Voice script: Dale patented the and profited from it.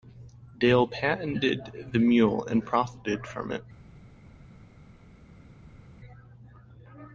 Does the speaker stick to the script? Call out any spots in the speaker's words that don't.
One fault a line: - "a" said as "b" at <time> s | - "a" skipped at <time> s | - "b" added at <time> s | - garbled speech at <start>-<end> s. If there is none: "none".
- "mule" added at 2.0 s